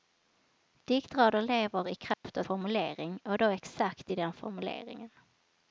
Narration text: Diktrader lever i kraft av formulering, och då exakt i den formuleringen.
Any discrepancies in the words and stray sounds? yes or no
yes